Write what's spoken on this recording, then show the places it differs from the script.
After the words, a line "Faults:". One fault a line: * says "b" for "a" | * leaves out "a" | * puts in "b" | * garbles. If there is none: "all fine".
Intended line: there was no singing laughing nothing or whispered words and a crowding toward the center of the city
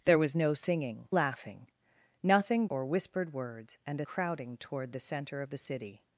there was no singing laughing nothing or whispered words and a crowding toward the center of the city
Faults:
all fine